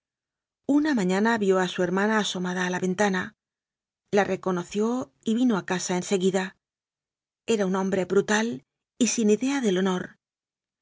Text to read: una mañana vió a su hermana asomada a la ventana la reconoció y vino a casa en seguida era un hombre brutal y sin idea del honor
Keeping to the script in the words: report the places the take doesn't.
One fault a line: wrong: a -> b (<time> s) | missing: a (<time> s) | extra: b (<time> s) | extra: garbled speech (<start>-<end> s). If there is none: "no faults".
no faults